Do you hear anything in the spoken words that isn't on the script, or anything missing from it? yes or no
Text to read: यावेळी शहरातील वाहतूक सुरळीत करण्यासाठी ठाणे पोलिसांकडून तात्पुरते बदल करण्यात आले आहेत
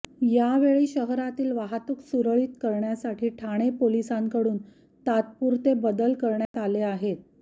no